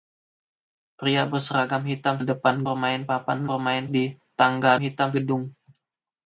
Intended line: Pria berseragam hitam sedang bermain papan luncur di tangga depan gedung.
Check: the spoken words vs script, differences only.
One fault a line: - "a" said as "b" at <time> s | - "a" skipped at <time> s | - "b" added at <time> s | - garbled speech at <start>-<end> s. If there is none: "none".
- "sedang" said as "depan" at 2.2 s
- "luncur" said as "bermain" at 3.5 s
- "depan" said as "hitam" at 4.8 s